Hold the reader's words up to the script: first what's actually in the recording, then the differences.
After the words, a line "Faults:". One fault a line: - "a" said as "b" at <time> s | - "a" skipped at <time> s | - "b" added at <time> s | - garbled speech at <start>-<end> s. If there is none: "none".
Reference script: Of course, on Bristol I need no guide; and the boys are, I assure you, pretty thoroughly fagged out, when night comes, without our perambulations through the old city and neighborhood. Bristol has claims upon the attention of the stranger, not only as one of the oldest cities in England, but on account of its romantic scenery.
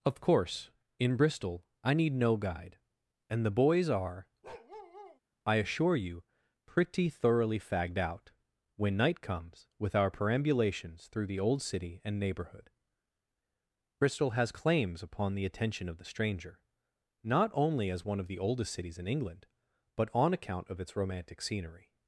Of course, in Bristol I need no guide; and the boys are, I assure you, pretty thoroughly fagged out, when night comes, with our perambulations through the old city and neighborhood. Bristol has claims upon the attention of the stranger, not only as one of the oldest cities in England, but on account of its romantic scenery.
Faults:
- "on" said as "in" at 1.0 s
- "without" said as "with" at 9.8 s